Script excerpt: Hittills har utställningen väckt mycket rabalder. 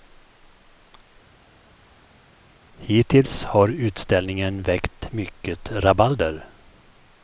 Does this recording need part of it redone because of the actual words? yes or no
no